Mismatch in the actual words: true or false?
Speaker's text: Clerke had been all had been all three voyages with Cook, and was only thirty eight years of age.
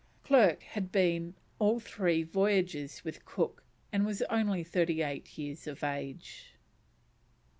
true